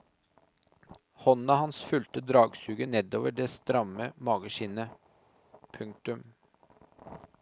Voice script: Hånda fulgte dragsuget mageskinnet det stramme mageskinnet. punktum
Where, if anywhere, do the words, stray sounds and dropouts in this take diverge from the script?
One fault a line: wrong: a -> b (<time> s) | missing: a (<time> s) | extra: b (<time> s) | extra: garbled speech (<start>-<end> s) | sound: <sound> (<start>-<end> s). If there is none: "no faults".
extra: hans (1.6 s)
wrong: mageskinnet -> nedover (2.9 s)